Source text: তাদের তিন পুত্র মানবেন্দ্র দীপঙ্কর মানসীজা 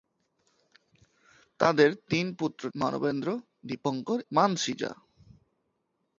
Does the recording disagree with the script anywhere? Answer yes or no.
no